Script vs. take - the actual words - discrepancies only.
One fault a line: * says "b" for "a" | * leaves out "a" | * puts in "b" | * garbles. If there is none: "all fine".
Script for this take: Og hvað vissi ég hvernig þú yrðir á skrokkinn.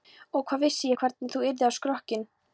all fine